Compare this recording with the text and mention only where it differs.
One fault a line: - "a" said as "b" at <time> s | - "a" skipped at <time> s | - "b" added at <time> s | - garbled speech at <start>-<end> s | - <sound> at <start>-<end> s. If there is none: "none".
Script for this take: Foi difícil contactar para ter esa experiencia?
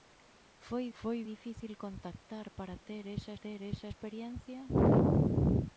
- "foi" added at 1.0 s
- "ter esa" added at 3.3 s